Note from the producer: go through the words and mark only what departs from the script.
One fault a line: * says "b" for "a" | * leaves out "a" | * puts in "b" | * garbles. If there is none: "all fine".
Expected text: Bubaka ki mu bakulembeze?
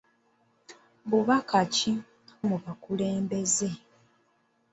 all fine